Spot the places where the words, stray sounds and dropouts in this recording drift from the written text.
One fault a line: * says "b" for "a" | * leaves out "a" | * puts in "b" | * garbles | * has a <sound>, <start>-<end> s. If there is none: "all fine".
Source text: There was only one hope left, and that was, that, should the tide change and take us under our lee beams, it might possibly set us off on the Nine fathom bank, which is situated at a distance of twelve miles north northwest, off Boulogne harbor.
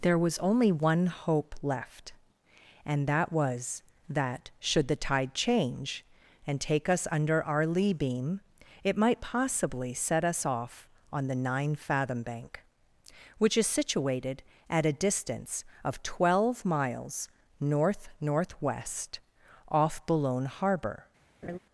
* says "beam" for "beams"
* has a laugh, 21.4-21.6 s